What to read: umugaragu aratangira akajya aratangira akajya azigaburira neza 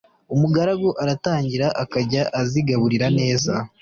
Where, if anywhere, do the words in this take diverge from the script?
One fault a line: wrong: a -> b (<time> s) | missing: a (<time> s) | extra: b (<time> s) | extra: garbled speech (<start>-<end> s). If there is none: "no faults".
missing: aratangira akajya (2.2 s)